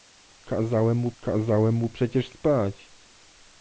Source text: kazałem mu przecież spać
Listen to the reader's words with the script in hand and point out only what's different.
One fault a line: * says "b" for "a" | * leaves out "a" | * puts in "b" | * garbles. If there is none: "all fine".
* puts in "kazałem mu"